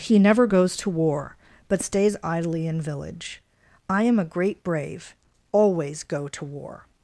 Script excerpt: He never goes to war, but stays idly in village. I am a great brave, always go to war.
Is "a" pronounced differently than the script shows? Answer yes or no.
no